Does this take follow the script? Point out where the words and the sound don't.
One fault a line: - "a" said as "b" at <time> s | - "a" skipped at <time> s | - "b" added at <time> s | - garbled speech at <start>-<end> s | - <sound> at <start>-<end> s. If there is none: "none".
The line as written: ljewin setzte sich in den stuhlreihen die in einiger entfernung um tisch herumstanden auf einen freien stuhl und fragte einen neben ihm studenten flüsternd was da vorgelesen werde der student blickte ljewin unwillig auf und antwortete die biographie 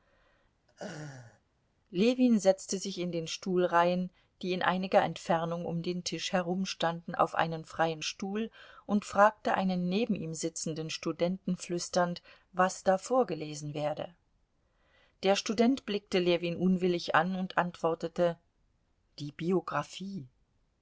- laugh at 0.7-1.4 s
- "den" added at 5.8 s
- "sitzenden" added at 10.3 s
- "auf" said as "an" at 17.1 s